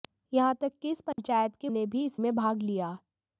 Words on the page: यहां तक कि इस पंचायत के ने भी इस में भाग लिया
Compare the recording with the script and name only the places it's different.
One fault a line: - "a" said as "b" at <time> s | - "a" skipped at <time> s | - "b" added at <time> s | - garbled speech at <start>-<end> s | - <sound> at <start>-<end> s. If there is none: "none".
- dropout at 1.1-1.2 s